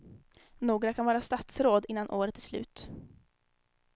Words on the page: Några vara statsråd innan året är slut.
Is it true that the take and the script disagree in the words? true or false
true